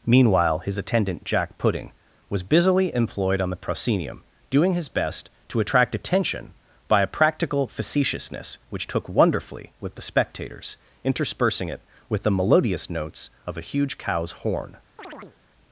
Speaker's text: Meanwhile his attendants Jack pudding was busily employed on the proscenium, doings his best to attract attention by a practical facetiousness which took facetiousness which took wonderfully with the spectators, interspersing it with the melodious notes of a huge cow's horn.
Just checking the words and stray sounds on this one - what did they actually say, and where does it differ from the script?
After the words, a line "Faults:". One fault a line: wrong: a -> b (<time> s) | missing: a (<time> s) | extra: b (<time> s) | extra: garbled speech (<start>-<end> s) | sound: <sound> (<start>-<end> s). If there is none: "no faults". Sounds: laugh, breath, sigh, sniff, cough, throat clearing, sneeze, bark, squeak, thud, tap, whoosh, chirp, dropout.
Meanwhile his attendant Jack pudding was busily employed on the proscenium, doing his best to attract attention by a practical facetiousness which took wonderfully with the spectators, interspersing it with the melodious notes of a huge cow's horn.
Faults:
wrong: attendants -> attendant (0.8 s)
wrong: doings -> doing (4.5 s)
missing: facetiousness which took (9.1 s)
sound: chirp (15.0-15.4 s)